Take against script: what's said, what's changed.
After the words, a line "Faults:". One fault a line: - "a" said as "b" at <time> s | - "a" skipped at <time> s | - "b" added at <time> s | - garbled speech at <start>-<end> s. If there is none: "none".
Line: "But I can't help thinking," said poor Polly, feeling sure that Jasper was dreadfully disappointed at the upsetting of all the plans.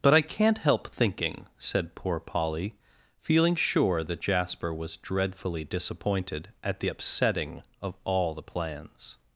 "But I can't help thinking," said poor Polly, feeling sure that Jasper was dreadfully disappointed at the upsetting of all the plans.
Faults:
none